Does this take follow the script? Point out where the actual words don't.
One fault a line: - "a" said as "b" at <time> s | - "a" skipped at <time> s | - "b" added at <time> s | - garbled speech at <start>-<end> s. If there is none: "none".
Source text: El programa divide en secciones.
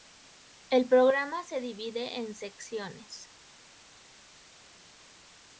- "se" added at 1.4 s